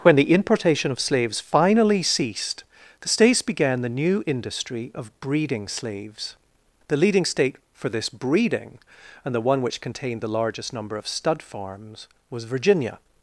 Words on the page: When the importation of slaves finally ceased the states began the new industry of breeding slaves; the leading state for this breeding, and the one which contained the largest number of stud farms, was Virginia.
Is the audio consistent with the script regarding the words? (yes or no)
yes